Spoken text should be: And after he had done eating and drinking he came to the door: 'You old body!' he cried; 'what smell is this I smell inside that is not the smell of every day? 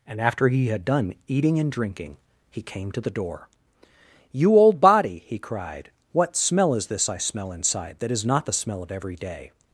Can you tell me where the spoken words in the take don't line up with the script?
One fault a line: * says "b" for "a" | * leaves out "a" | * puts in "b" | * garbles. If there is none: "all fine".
all fine